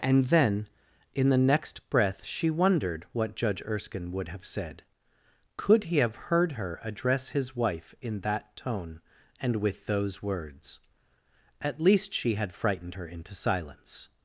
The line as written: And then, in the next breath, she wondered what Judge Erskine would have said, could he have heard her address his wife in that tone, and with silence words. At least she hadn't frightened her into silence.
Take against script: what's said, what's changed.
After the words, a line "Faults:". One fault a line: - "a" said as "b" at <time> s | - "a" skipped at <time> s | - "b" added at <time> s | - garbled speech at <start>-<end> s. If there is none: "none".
And then, in the next breath, she wondered what Judge Erskine would have said, could he have heard her address his wife in that tone, and with those words. At least she had frightened her into silence.
Faults:
- "silence" said as "those" at 9.9 s
- "hadn't" said as "had" at 12.3 s